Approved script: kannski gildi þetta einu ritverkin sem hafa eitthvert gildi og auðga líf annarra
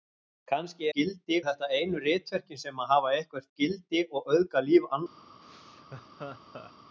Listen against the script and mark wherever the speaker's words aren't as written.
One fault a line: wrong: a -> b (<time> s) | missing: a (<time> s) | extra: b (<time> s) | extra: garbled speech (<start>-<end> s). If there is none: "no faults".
no faults